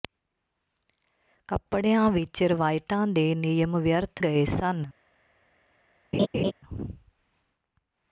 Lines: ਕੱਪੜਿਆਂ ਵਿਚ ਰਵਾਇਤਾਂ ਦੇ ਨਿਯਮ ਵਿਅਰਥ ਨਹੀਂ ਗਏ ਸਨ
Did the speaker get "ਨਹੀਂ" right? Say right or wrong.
wrong